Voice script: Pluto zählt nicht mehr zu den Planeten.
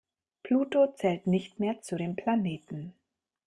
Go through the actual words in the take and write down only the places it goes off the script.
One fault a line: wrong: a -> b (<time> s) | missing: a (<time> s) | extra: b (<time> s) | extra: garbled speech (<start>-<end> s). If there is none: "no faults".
no faults